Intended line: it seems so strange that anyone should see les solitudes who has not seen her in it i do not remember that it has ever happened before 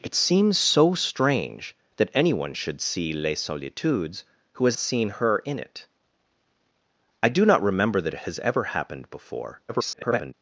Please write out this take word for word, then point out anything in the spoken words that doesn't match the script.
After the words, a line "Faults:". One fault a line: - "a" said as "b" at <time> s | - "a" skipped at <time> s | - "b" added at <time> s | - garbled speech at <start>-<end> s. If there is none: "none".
it seems so strange that anyone should see les solitudes who has seen her in it i do not remember that it has ever happened before [garbled]
Faults:
- "not" skipped at 4.8 s
- garbled speech at 9.7-10.3 s